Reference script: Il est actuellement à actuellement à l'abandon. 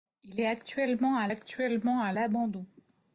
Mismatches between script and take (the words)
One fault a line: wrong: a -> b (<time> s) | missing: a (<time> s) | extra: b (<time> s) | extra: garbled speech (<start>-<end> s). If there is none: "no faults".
no faults